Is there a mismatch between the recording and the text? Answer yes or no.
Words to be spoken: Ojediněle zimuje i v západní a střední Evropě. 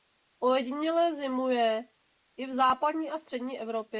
no